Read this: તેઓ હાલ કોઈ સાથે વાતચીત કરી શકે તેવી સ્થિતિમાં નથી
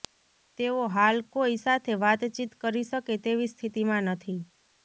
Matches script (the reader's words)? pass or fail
pass